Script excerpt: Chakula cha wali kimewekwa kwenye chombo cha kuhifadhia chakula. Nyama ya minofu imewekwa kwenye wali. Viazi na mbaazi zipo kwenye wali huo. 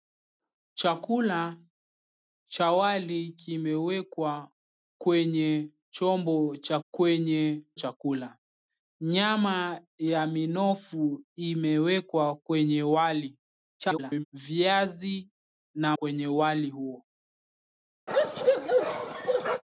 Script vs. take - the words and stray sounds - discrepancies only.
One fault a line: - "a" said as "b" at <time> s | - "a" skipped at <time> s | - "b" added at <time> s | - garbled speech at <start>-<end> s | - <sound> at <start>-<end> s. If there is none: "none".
- "kuhifadhia" said as "kwenye" at 6.9 s
- garbled speech at 13.8-14.2 s
- "mbaazi zipo" skipped at 16.0 s
- bark at 18.1-19.6 s